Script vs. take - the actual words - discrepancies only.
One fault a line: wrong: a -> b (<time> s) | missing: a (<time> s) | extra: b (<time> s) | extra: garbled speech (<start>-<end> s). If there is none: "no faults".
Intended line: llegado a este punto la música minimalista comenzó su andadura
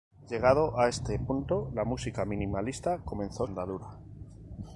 missing: su (3.5 s)